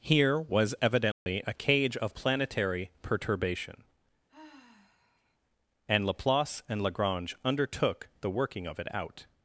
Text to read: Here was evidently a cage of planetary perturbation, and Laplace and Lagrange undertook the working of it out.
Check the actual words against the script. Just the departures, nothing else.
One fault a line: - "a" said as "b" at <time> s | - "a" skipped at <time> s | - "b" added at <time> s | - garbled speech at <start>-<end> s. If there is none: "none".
none